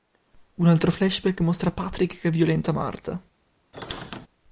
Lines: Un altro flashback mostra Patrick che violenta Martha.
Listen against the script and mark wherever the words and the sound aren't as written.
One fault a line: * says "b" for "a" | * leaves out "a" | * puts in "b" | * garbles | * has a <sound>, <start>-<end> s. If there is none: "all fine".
* has a squeak, 3.7-4.3 s